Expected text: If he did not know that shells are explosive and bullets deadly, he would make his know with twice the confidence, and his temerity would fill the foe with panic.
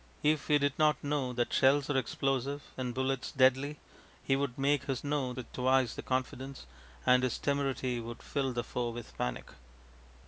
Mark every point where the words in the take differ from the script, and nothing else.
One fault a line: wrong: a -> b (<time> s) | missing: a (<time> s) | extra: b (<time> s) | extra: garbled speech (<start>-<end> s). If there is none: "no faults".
no faults